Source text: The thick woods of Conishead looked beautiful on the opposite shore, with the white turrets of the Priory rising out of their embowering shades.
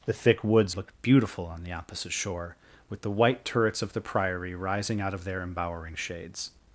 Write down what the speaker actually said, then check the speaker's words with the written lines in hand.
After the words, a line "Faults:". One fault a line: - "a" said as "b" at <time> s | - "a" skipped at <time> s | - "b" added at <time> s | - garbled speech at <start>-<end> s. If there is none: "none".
The thick woods looked beautiful on the opposite shore, with the white turrets of the Priory rising out of their embowering shades.
Faults:
- "of Conishead" skipped at 0.8 s